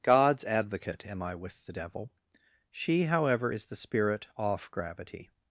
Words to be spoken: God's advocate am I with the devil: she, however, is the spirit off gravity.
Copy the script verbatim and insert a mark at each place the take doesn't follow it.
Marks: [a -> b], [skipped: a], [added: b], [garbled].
God's advocate am I with the devil: she, however, is the spirit off gravity.